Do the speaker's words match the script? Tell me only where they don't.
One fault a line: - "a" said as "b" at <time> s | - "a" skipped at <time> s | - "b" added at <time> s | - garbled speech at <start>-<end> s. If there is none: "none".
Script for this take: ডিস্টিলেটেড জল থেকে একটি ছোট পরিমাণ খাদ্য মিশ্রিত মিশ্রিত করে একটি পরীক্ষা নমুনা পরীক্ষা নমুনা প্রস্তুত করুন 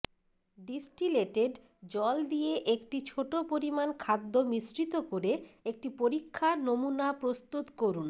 - "থেকে" said as "দিয়ে" at 2.2 s
- "মিশ্রিত" skipped at 4.9 s
- "পরীক্ষা নমুনা" skipped at 7.1 s